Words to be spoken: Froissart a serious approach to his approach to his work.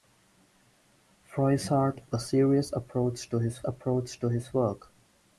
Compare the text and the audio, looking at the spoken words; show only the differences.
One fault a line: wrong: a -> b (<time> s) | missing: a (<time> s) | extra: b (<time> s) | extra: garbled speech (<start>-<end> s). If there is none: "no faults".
no faults